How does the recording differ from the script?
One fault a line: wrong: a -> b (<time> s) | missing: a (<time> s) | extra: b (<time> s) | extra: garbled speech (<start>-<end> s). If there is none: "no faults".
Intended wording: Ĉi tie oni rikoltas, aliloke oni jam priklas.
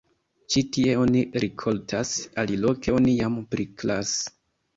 no faults